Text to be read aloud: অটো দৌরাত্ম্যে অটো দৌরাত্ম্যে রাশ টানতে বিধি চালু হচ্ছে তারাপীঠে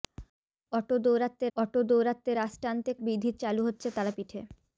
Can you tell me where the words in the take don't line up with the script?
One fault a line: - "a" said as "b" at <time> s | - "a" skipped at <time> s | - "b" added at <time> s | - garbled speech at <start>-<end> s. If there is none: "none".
none